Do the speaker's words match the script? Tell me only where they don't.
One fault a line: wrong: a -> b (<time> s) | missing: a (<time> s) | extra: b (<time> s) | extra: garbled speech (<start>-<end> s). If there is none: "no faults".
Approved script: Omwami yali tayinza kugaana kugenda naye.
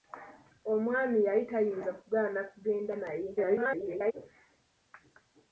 extra: garbled speech (3.4-4.1 s)